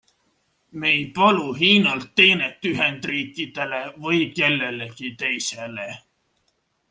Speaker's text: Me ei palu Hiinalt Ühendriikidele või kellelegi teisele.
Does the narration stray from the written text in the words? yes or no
yes